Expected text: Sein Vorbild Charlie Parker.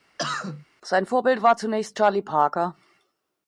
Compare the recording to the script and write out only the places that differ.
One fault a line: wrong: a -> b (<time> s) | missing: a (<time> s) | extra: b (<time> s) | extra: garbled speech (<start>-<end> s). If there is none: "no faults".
extra: war zunächst (1.4 s)